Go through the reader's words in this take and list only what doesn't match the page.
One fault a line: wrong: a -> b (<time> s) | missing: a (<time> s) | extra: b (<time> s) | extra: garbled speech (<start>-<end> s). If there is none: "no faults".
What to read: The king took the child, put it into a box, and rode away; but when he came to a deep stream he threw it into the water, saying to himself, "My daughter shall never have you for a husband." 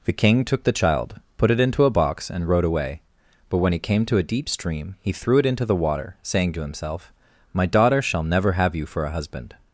no faults